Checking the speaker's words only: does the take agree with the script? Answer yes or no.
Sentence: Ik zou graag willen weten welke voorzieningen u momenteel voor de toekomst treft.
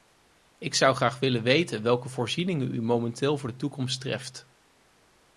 yes